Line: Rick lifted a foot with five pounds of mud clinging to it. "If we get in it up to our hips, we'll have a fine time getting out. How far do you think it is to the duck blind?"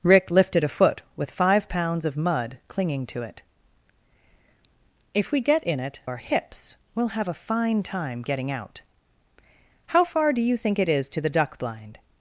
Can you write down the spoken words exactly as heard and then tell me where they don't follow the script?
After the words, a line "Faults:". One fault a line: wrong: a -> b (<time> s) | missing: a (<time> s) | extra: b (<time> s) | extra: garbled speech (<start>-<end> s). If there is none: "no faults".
Rick lifted a foot with five pounds of mud clinging to it. "If we get in it our hips, we'll have a fine time getting out. How far do you think it is to the duck blind?"
Faults:
missing: up to (6.0 s)